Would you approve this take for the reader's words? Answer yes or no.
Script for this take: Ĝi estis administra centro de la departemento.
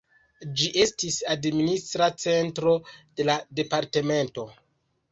yes